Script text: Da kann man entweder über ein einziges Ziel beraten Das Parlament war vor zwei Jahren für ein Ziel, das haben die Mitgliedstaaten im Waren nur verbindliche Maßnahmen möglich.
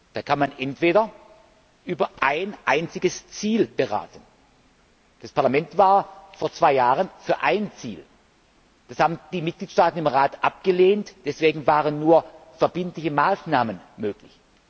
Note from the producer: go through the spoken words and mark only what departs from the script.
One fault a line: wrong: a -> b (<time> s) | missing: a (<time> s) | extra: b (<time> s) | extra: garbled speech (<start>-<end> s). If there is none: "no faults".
extra: Rat abgelehnt Deswegen (10.1 s)